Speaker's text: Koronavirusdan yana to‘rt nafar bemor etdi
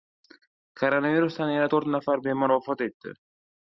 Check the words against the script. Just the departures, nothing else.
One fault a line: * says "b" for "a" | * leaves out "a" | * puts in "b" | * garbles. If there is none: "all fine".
* puts in "vafot"